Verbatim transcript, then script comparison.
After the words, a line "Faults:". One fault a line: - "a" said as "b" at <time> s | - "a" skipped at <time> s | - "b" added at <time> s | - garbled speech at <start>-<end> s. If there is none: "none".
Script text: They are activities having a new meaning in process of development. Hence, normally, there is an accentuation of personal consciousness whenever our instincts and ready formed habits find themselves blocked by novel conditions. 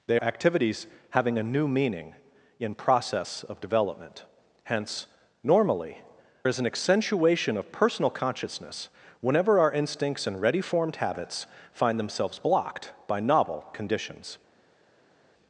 They activities having a new meaning in process of development. Hence, normally, is an accentuation of personal consciousness whenever our instincts and ready formed habits find themselves blocked by novel conditions.
Faults:
- "are" skipped at 0.2 s
- "there" skipped at 6.0 s